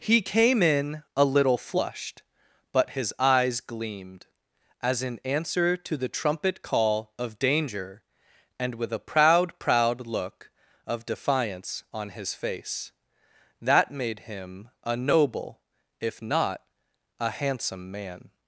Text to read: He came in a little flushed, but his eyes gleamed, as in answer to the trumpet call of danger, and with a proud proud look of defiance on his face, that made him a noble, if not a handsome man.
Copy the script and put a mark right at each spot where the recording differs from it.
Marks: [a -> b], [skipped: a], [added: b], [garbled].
He came in a little flushed, but his eyes gleamed, as in answer to the trumpet call of danger, and with a proud proud look of defiance on his face, that made him a noble, if not a handsome man.